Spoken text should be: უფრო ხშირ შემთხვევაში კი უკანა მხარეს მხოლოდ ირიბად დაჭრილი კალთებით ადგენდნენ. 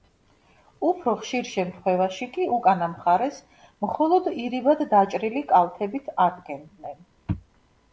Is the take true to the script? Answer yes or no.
yes